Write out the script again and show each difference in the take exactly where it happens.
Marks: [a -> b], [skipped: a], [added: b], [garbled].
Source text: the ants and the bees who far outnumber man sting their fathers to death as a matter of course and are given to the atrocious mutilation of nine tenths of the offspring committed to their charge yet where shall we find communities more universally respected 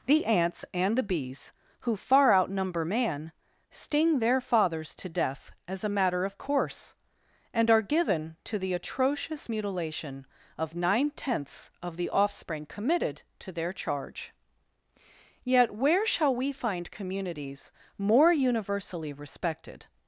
the ants and the bees who far outnumber man sting their fathers to death as a matter of course and are given to the atrocious mutilation of nine tenths of the offspring committed to their charge yet where shall we find communities more universally respected